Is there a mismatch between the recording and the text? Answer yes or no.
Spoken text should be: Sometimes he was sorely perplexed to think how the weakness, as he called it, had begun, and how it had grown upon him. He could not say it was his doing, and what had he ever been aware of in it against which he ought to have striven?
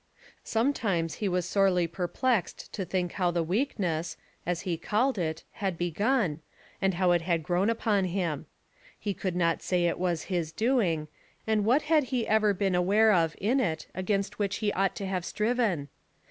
no